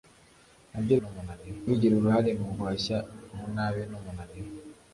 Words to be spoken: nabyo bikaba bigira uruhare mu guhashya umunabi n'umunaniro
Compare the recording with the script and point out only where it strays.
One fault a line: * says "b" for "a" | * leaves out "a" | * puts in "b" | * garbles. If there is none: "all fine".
* says "n'umunaniro" for "bikaba"